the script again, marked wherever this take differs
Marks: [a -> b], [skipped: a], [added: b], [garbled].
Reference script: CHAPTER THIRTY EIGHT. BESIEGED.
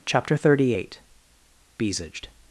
CHAPTER THIRTY EIGHT. BESIEGED.